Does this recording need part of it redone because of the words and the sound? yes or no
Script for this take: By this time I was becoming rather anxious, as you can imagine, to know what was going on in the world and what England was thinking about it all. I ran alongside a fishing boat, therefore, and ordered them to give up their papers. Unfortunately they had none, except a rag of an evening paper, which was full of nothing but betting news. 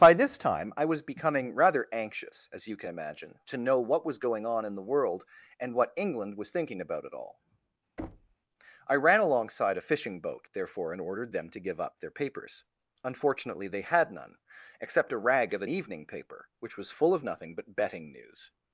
yes